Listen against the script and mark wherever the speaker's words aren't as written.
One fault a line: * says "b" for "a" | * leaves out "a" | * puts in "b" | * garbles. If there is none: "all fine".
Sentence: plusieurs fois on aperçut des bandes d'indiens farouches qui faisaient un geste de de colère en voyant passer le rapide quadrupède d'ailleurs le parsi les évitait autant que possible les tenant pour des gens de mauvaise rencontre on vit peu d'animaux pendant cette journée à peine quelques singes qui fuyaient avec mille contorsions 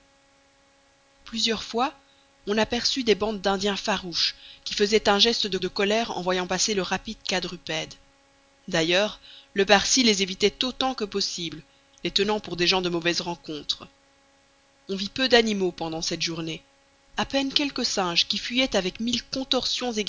all fine